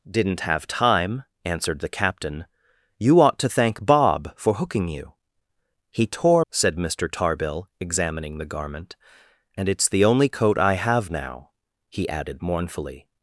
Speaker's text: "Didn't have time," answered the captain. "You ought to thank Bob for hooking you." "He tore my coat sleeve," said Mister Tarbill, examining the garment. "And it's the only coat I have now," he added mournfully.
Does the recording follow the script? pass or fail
fail